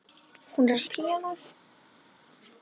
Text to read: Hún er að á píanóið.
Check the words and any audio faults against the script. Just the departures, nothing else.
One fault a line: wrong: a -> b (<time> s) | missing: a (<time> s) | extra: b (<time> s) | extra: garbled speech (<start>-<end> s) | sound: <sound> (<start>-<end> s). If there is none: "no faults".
no faults